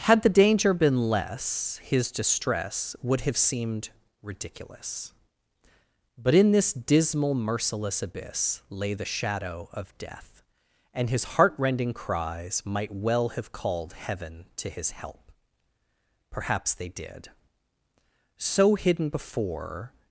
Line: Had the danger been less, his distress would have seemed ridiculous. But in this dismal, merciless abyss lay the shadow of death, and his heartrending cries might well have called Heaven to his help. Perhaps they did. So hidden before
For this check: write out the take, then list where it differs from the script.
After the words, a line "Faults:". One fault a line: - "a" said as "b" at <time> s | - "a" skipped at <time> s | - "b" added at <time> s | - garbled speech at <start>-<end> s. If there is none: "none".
Had the danger been less, his distress would have seemed ridiculous. But in this dismal, merciless abyss lay the shadow of death, and his heartrending cries might well have called Heaven to his help. Perhaps they did. So hidden before
Faults:
none